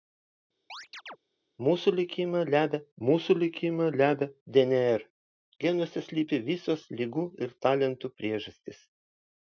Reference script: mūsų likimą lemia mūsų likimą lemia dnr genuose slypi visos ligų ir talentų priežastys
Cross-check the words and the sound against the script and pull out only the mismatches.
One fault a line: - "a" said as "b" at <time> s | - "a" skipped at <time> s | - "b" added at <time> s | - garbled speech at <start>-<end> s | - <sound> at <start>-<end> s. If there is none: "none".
- chirp at 0.7-1.2 s